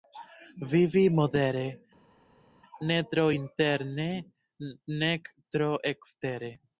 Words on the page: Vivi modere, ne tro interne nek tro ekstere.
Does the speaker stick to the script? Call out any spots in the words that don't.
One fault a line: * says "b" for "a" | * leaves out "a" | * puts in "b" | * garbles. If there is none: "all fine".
all fine